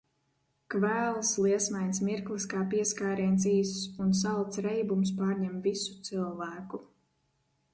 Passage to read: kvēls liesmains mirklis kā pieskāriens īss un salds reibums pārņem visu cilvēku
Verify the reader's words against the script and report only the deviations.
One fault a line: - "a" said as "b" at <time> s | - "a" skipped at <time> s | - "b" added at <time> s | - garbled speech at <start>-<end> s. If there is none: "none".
none